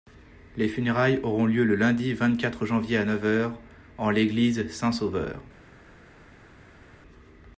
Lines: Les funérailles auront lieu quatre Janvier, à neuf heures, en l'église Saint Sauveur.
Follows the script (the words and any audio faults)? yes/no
no